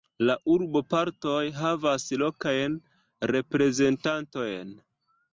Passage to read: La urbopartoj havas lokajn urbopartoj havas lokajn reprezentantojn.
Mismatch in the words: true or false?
true